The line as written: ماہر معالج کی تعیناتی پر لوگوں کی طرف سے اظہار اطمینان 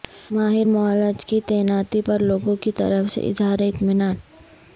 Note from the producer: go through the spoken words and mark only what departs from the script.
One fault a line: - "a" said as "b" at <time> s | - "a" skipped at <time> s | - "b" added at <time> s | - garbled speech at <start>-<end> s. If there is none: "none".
none